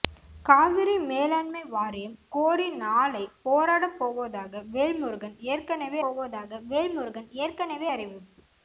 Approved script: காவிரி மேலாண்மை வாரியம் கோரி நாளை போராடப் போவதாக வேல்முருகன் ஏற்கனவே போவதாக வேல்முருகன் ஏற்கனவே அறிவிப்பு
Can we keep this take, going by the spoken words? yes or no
yes